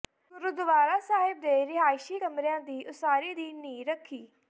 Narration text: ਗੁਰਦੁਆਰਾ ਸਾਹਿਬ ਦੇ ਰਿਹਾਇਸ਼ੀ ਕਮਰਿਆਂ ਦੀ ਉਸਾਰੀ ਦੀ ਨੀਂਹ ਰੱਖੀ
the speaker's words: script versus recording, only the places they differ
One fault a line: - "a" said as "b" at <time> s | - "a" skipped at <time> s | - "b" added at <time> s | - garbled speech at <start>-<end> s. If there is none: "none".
none